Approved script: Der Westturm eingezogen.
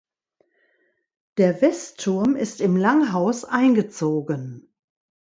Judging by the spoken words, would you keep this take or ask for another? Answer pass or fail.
fail